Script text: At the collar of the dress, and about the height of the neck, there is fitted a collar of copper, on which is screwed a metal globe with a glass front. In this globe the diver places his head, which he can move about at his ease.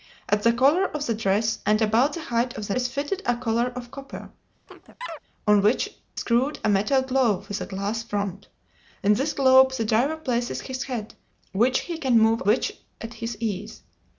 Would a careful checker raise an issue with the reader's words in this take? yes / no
yes